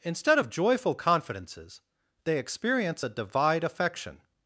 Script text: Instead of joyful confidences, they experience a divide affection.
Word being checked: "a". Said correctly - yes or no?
yes